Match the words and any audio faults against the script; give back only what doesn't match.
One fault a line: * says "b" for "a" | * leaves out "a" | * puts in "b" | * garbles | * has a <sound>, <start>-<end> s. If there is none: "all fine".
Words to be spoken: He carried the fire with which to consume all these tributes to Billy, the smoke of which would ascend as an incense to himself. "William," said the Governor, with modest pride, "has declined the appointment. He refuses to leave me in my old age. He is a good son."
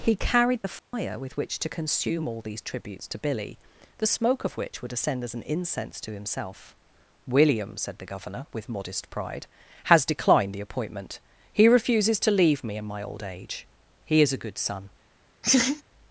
* has a dropout, 0.8-0.9 s
* has a laugh, 15.4-15.8 s